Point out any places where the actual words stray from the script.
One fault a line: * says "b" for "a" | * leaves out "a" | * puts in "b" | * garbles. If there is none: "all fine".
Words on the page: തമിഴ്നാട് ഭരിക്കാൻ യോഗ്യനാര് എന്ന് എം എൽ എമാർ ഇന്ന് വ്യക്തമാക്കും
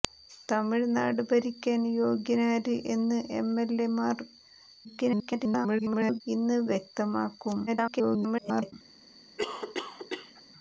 * garbles
* garbles